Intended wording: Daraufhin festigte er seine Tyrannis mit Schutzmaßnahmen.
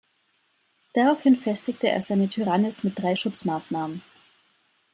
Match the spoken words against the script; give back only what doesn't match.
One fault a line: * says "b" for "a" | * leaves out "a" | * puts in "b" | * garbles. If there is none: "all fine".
* puts in "drei"